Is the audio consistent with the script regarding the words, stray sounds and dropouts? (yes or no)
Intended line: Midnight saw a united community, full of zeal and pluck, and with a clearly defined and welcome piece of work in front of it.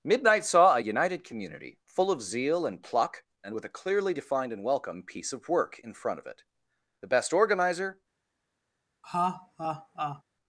no